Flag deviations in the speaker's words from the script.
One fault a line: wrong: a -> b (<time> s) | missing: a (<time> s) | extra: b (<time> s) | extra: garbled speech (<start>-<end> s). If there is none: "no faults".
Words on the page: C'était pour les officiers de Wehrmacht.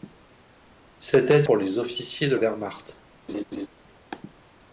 no faults